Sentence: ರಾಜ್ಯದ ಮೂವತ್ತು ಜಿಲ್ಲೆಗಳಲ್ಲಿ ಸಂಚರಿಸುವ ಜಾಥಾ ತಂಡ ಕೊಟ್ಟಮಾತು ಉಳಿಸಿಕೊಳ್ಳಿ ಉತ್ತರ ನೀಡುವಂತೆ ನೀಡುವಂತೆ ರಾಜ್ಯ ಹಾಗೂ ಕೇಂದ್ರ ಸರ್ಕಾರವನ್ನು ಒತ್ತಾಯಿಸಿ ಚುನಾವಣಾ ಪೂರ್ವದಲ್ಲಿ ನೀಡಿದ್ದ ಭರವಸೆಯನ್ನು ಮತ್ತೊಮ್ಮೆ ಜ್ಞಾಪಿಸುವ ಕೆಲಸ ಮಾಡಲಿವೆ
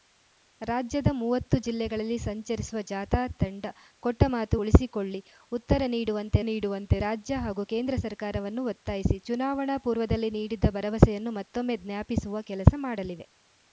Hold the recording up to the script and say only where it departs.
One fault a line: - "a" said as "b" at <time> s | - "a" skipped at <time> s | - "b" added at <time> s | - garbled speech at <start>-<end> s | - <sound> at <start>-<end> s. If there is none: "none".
none